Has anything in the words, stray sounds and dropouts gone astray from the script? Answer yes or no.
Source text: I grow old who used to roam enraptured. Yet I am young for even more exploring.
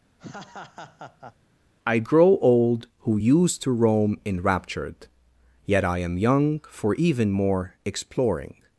yes